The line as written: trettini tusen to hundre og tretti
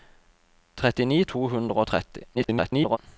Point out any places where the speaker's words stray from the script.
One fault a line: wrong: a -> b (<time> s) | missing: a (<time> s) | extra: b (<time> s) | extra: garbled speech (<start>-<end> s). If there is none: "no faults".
missing: tusen (1.2 s)
extra: garbled speech (2.3-3.0 s)